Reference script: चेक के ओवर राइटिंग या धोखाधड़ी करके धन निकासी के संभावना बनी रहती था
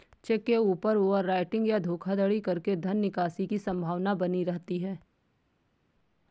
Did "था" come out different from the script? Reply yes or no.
yes